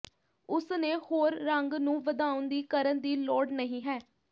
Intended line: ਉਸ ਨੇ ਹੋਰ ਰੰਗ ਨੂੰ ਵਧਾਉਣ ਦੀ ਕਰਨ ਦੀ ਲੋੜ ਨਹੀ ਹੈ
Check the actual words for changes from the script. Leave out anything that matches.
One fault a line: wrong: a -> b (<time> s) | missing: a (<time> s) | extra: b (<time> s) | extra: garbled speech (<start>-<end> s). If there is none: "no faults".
no faults